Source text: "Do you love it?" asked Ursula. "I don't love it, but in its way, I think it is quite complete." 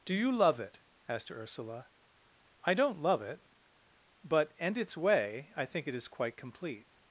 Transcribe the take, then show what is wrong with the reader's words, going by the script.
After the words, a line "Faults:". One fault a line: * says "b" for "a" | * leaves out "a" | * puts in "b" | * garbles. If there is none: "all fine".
"Do you love it?" asked Ursula. "I don't love it, but and its way, I think it is quite complete."
Faults:
* says "and" for "in"